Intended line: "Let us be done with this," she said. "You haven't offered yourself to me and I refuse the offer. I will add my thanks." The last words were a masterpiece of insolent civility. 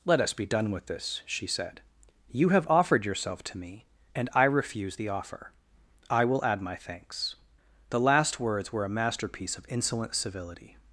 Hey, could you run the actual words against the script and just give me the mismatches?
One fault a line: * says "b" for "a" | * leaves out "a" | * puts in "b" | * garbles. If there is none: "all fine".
* says "have" for "haven't"